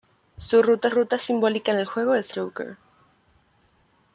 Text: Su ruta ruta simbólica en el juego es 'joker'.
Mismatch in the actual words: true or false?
false